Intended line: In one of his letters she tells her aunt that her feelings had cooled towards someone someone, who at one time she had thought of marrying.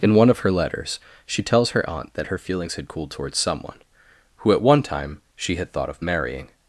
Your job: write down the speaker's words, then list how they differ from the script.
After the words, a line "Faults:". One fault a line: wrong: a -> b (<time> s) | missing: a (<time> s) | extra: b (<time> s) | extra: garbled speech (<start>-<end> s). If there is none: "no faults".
In one of her letters she tells her aunt that her feelings had cooled towards someone, who at one time she had thought of marrying.
Faults:
wrong: his -> her (0.4 s)
missing: someone (3.8 s)